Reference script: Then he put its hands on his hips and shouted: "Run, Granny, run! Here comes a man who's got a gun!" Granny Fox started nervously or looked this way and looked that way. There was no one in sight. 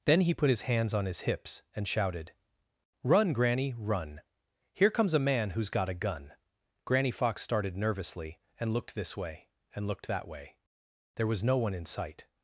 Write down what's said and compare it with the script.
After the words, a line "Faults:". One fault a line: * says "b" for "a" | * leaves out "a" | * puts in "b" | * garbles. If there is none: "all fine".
Then he put his hands on his hips and shouted: "Run, Granny, run! Here comes a man who's got a gun!" Granny Fox started nervously and looked this way and looked that way. There was no one in sight.
Faults:
* says "his" for "its"
* says "and" for "or"